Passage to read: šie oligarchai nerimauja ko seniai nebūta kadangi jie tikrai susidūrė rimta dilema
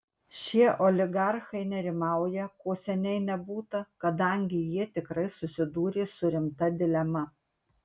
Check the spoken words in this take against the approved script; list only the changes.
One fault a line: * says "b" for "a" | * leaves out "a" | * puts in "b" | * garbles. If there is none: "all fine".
* puts in "su"